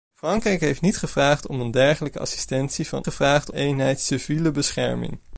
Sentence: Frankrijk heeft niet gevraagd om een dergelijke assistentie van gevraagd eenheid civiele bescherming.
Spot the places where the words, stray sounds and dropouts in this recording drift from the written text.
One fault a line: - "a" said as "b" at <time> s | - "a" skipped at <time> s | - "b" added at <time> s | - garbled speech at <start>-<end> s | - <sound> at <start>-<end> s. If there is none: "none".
none